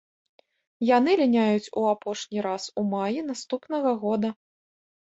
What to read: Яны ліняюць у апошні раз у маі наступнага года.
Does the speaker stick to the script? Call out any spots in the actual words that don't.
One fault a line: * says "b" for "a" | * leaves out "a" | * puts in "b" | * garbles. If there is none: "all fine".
all fine